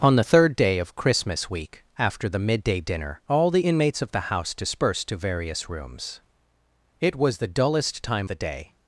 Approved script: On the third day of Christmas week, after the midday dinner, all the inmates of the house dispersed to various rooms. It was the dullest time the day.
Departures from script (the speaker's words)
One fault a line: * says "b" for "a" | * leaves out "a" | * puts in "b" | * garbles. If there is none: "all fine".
all fine